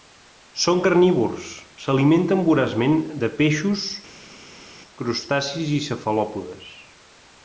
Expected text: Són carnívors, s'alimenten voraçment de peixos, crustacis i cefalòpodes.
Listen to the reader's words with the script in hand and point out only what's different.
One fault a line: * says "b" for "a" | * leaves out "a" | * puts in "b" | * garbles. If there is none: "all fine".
all fine